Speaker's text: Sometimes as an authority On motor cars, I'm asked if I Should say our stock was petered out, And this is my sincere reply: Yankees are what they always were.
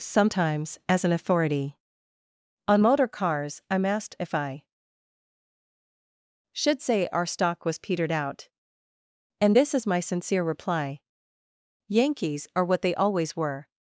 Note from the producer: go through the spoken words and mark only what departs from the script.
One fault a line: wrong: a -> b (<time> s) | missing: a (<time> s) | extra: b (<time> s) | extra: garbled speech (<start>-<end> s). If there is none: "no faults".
no faults